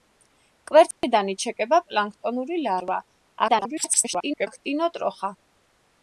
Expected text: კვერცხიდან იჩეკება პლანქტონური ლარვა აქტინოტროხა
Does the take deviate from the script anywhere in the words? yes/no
yes